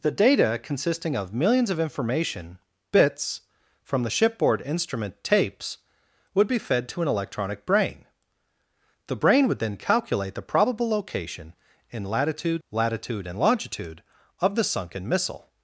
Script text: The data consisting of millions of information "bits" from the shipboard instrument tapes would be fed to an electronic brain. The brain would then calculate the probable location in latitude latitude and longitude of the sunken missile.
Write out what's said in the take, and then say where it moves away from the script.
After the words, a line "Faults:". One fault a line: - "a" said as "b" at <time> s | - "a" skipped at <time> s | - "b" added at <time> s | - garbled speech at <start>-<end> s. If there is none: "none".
The data consisting of millions of information "bits" from the shipboard instrument tapes would be fed to an electronic brain. The brain would then calculate the probable location in latitude latitude and longitude of the sunken missile.
Faults:
none